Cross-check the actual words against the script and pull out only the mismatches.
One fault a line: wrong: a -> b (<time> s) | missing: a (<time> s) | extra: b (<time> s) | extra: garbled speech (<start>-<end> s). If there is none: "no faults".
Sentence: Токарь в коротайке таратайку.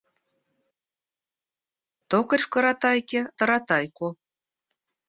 no faults